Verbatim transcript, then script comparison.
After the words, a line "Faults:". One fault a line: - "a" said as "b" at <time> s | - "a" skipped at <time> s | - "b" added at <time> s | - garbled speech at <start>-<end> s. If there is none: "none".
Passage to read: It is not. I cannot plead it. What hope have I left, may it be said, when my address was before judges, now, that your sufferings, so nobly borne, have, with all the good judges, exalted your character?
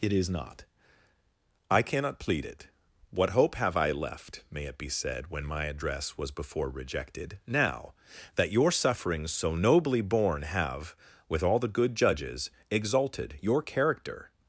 It is not. I cannot plead it. What hope have I left, may it be said, when my address was before rejected, now, that your sufferings, so nobly borne, have, with all the good judges, exalted your character?
Faults:
- "judges" said as "rejected" at 6.7 s